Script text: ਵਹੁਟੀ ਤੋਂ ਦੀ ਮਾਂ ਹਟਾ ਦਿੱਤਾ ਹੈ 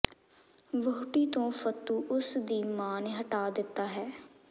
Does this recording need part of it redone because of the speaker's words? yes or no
yes